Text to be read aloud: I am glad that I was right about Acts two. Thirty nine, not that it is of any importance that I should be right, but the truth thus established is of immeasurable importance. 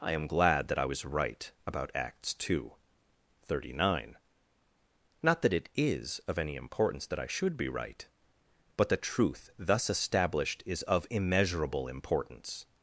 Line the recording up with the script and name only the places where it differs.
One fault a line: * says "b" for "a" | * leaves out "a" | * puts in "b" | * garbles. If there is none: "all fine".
all fine